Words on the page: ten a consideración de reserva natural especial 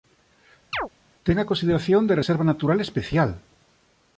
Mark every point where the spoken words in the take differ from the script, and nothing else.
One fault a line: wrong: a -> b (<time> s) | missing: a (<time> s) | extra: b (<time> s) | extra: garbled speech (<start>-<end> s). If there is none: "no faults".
no faults